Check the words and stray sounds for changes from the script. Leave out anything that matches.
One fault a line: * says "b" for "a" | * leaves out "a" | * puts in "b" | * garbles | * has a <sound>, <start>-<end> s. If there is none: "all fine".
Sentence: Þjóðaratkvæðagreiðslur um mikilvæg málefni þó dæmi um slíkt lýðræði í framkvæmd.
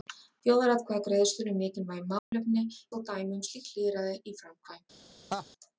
* has a dropout, 2.2-2.3 s
* has a laugh, 5.3-5.5 s